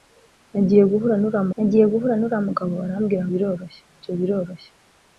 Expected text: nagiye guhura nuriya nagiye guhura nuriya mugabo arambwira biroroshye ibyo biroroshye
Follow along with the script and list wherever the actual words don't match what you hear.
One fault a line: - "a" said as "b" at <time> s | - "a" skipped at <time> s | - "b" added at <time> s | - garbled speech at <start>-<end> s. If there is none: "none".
none